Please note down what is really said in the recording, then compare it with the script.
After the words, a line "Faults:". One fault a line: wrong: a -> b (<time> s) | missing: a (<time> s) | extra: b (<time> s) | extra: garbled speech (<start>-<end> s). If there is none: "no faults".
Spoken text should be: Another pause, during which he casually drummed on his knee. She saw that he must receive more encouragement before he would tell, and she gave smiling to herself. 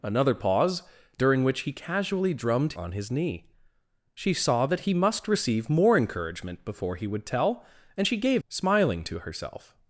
Another pause, during which he casually drummed on his knee. She saw that he must receive more encouragement before he would tell, and she gave smiling to herself.
Faults:
no faults